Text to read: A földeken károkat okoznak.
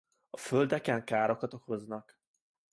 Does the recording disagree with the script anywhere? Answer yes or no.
no